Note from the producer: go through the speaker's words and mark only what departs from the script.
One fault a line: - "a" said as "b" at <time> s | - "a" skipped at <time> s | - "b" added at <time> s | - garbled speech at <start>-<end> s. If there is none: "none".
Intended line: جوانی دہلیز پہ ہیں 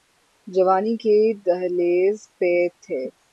- "کی" added at 1.0 s
- "ہیں" said as "تھے" at 2.8 s